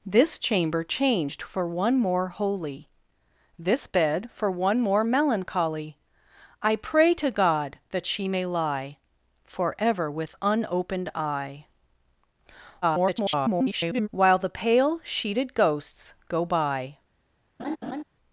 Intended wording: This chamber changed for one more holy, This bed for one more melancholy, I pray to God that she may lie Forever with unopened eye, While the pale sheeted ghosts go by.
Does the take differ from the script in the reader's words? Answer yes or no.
yes